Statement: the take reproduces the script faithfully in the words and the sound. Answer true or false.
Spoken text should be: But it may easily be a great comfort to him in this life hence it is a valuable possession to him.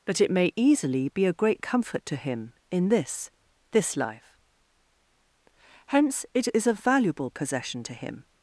false